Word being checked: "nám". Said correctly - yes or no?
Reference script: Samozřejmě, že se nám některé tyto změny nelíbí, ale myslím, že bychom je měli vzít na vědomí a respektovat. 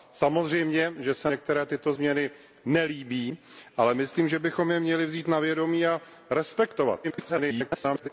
no